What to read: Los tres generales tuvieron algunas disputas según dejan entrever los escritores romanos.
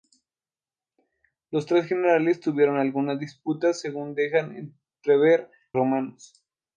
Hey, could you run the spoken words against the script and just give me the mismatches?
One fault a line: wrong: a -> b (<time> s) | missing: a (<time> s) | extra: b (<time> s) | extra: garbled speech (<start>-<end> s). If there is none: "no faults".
missing: los escritores (5.5 s)